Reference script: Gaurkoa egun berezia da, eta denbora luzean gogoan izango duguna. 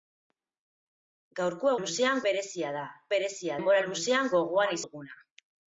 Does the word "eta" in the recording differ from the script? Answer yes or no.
yes